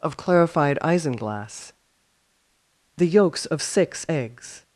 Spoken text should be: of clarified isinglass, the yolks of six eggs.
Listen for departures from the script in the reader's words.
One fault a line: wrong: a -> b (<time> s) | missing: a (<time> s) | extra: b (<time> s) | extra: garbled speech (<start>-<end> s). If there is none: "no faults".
no faults